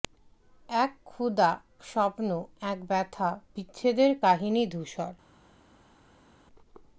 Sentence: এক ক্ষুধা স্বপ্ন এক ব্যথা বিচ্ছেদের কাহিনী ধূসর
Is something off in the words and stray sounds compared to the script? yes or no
no